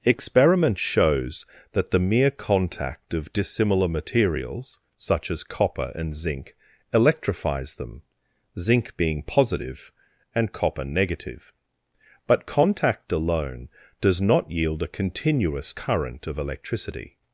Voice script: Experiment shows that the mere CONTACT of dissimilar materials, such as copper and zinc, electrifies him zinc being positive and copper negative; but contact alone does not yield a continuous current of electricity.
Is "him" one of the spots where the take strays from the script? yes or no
yes